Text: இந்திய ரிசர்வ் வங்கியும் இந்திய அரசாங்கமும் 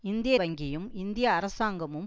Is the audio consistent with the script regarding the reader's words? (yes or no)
no